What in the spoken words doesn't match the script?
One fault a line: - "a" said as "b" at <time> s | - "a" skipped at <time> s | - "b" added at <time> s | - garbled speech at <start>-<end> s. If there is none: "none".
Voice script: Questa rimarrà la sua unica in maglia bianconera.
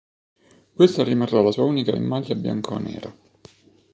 none